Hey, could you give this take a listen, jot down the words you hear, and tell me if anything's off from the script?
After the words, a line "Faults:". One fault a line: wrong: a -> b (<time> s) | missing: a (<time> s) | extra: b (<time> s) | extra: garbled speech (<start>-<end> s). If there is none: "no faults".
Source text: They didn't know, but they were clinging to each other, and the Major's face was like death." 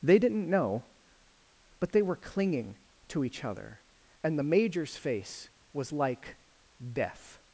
They didn't know, but they were clinging to each other, and the Major's face was like death."
Faults:
no faults